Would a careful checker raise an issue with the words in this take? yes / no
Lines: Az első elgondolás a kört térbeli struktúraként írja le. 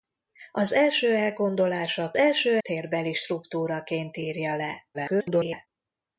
yes